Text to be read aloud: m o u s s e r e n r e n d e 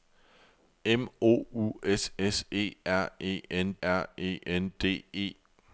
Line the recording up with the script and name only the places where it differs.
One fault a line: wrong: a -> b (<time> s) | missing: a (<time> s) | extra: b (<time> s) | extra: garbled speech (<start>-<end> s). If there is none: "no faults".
no faults